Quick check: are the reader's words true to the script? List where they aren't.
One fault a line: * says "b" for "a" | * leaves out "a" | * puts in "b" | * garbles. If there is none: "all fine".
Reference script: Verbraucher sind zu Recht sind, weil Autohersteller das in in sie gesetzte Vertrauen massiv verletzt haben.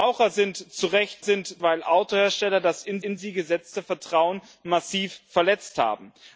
all fine